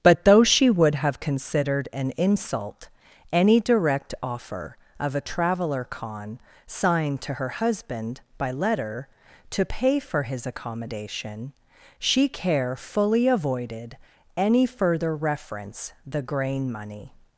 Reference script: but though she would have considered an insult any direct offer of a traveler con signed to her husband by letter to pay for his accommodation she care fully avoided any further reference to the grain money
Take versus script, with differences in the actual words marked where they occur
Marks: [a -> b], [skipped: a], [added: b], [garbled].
but though she would have considered an insult any direct offer of a traveler con signed to her husband by letter to pay for his accommodation she care fully avoided any further reference [skipped: to] the grain money